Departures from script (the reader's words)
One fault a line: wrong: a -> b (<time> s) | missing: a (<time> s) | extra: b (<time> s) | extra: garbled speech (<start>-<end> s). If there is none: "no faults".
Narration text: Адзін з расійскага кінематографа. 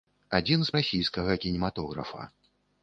no faults